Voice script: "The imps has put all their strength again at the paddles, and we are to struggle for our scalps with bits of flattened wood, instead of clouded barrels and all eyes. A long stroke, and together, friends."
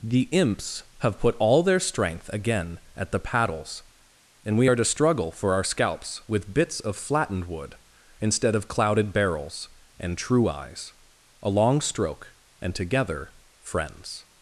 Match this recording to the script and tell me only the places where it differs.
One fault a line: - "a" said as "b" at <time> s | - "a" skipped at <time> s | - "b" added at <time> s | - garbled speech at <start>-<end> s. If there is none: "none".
- "has" said as "have" at 1.0 s
- "all" said as "true" at 10.2 s